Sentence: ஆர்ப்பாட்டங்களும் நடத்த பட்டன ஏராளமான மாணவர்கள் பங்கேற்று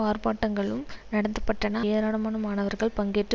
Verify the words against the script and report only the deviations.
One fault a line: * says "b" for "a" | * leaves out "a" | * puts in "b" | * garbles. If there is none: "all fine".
all fine